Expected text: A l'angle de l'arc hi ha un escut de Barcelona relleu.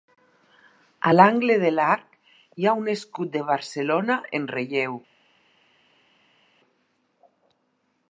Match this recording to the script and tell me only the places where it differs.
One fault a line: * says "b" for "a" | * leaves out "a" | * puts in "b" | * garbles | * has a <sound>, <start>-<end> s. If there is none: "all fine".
* puts in "en"